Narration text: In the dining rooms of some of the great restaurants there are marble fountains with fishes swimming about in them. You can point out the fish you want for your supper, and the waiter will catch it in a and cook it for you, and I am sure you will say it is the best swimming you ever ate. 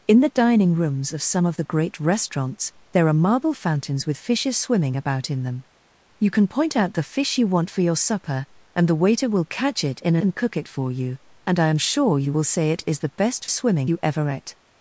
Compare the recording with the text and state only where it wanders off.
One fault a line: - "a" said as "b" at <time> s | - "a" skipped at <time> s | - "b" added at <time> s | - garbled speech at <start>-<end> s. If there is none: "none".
none